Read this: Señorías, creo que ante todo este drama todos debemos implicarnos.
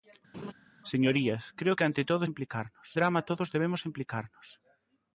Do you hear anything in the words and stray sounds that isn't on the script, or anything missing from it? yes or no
yes